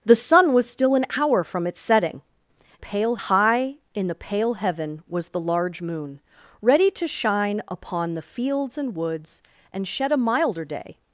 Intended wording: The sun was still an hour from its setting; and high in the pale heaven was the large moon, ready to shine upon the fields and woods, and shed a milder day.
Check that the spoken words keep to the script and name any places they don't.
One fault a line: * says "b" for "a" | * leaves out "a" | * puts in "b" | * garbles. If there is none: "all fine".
* says "pale" for "and"